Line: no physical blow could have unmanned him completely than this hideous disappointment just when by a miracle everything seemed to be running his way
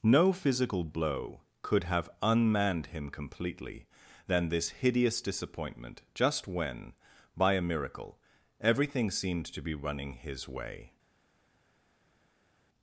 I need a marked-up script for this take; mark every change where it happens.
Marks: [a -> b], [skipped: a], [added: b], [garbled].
no physical blow could have unmanned him completely than this hideous disappointment just when by a miracle everything seemed to be running his way